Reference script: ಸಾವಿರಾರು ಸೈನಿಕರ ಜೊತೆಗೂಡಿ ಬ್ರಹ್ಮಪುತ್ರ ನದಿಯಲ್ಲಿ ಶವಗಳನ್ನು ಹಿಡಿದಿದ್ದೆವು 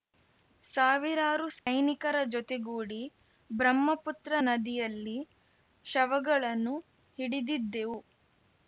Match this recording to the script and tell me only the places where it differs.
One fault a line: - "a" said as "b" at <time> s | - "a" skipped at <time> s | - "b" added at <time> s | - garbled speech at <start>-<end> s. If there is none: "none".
none